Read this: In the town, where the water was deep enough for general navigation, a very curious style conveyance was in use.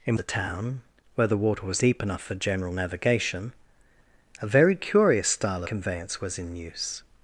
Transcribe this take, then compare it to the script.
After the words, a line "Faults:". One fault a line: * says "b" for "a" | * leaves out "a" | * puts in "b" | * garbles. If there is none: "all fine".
In the town, where the water was deep enough for general navigation, a very curious style conveyance was in use.
Faults:
all fine